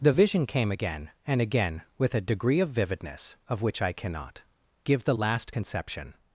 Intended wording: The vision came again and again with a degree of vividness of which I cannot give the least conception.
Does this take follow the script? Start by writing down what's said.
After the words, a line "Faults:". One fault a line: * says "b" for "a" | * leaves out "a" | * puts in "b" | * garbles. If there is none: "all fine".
The vision came again and again with a degree of vividness of which I cannot give the last conception.
Faults:
* says "last" for "least"